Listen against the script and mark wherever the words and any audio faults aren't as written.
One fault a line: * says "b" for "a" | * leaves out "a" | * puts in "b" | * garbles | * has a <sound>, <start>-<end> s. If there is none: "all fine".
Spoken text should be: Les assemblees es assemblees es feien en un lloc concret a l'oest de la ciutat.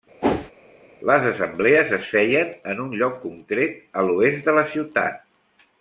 * has a whoosh, 0.2-0.5 s
* leaves out "assemblees es"